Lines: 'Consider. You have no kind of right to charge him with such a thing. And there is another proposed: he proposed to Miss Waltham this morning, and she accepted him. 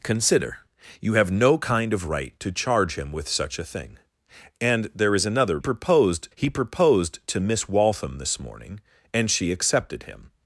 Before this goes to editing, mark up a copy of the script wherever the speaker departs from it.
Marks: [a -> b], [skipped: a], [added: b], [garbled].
'Consider. You have no kind of right to charge him with such a thing. And there is another proposed: he proposed to Miss Waltham this morning, and she accepted him.